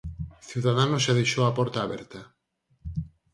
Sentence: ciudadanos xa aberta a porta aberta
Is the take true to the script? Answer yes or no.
no